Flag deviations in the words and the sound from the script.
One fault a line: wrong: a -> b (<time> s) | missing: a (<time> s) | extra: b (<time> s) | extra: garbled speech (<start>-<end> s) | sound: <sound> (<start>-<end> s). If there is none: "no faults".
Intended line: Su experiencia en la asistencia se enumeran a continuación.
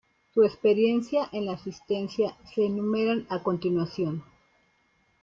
no faults